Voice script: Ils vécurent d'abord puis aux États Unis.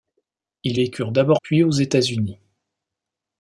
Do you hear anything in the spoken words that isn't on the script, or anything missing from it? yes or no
no